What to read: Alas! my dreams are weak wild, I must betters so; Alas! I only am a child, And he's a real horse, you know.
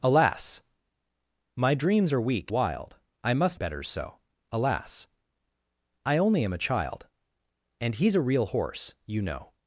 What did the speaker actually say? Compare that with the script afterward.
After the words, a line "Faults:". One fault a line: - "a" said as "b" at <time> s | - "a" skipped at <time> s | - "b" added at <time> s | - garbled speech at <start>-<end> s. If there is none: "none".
Alas! my dreams are weak wild, I must betters so; Alas! I only am a child, And he's a real horse, you know.
Faults:
none